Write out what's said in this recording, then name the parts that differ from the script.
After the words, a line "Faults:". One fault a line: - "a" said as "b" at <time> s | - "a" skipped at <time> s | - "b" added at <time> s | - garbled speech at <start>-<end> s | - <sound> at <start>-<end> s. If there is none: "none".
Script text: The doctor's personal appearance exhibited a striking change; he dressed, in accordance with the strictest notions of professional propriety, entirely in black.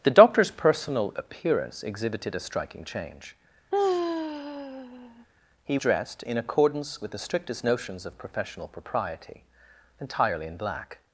The doctor's personal appearance exhibited a striking change; he dressed, in accordance with the strictest notions of professional propriety, entirely in black.
Faults:
- sigh at 3.7-5.3 s